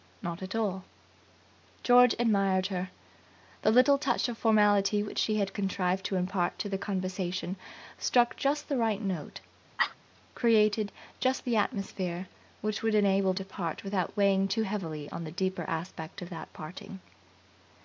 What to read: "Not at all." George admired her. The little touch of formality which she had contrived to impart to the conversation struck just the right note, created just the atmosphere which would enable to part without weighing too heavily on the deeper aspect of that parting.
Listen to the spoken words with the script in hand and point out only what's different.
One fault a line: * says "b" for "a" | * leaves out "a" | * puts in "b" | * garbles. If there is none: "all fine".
all fine